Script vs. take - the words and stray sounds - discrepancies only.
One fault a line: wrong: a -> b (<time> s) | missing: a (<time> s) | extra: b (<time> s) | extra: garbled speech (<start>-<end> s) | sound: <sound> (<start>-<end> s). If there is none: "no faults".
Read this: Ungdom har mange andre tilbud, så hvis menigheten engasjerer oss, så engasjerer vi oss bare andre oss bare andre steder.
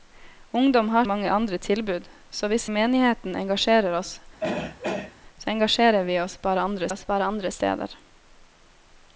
sound: throat clearing (4.4-5.2 s)